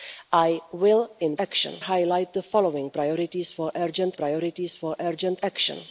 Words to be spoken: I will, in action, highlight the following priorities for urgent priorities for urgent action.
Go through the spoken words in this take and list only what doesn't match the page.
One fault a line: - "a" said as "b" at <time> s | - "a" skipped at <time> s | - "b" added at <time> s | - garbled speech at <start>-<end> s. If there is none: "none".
none